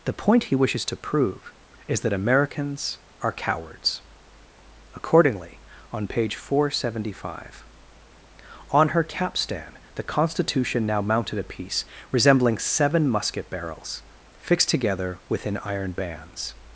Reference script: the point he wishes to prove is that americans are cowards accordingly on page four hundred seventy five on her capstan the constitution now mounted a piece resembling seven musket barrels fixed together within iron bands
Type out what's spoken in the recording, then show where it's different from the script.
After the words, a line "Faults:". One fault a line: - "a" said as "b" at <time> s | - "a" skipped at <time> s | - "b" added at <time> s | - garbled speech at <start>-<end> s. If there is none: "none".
the point he wishes to prove is that americans are cowards accordingly on page four hundred seventy five on her capstan the constitution now mounted a piece resembling seven musket barrels fixed together within iron bands
Faults:
none